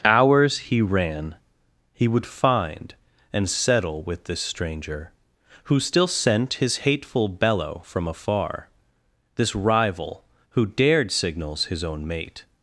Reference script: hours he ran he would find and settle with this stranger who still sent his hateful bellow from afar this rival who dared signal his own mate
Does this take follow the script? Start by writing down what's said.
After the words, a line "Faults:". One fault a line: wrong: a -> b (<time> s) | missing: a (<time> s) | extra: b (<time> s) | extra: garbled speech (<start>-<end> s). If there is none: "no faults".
hours he ran he would find and settle with this stranger who still sent his hateful bellow from afar this rival who dared signals his own mate
Faults:
wrong: signal -> signals (11.1 s)